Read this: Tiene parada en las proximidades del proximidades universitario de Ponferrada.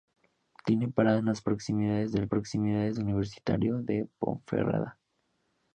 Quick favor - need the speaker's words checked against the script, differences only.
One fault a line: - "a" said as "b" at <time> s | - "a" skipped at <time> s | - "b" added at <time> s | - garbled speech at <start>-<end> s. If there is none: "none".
none